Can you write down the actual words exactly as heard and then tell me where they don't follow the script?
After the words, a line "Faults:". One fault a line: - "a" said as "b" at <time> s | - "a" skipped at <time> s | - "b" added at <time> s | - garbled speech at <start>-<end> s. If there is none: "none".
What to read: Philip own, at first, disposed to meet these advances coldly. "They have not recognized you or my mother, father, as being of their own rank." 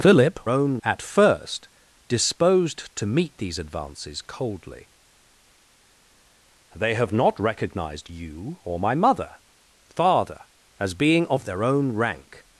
Philip own, at first, disposed to meet these advances coldly. "They have not recognized you or my mother, father, as being of their own rank."
Faults:
none